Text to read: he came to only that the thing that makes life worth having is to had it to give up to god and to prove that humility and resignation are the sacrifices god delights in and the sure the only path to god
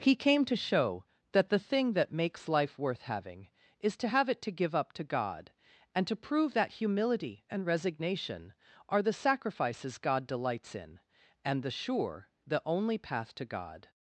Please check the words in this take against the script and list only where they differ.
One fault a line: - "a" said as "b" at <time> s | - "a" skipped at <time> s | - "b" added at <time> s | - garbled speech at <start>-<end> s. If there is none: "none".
- "only" said as "show" at 0.6 s
- "had" said as "have" at 4.1 s